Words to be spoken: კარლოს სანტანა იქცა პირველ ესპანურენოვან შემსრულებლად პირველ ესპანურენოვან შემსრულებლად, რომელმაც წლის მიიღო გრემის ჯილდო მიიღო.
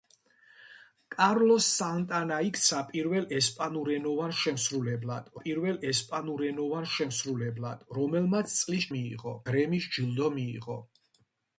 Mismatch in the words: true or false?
false